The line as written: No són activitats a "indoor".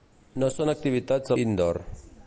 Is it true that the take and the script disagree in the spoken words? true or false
false